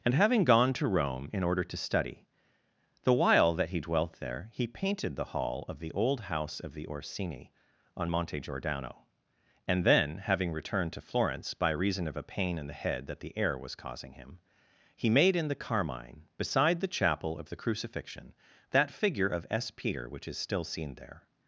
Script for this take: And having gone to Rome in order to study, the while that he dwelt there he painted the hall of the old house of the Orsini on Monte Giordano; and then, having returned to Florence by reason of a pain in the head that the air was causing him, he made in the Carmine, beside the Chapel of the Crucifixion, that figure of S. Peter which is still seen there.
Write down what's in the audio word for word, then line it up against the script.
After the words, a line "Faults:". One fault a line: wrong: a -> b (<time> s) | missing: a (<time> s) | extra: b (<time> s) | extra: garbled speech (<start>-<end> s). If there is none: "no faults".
And having gone to Rome in order to study, the while that he dwelt there he painted the hall of the old house of the Orsini on Monte Giordano; and then, having returned to Florence by reason of a pain in the head that the air was causing him, he made in the Carmine, beside the Chapel of the Crucifixion, that figure of S. Peter which is still seen there.
Faults:
no faults